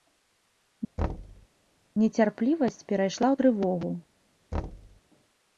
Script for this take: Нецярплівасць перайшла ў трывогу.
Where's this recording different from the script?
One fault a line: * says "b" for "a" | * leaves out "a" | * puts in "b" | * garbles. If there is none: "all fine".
all fine